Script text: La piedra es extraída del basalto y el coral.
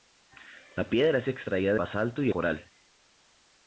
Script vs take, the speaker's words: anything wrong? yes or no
yes